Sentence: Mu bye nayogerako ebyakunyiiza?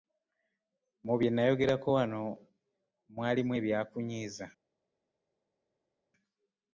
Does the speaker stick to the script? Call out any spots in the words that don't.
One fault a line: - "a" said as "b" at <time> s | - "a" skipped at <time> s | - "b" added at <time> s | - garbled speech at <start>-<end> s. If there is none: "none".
- "wano mwalimu" added at 2.0 s